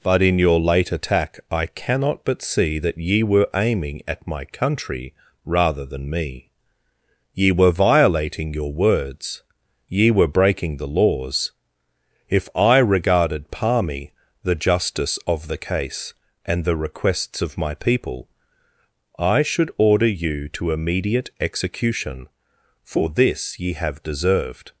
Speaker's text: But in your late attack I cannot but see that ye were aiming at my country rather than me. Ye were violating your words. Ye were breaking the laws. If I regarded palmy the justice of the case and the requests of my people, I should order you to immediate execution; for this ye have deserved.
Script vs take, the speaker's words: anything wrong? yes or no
no